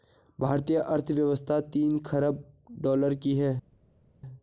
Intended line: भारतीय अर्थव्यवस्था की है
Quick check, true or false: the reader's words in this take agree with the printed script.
false